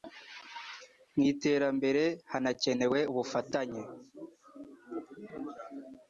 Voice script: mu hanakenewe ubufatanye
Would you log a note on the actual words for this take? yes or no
yes